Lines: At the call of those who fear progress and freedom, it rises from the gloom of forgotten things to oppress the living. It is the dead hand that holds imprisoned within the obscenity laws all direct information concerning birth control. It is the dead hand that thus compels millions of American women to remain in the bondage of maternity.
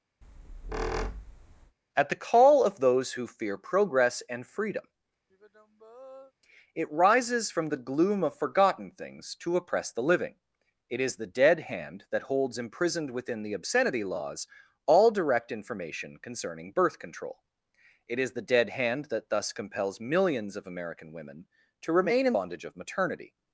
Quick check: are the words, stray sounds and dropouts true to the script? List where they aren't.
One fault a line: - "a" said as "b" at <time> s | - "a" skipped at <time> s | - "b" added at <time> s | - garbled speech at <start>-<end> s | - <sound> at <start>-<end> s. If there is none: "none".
- squeak at 0.2-1.8 s
- sigh at 5.3-6.3 s
- "the" skipped at 22.3 s